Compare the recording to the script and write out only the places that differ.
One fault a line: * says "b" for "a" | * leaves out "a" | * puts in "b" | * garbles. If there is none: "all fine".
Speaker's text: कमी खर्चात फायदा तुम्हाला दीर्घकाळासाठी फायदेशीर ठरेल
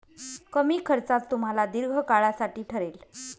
* leaves out "फायदा"
* leaves out "फायदेशीर"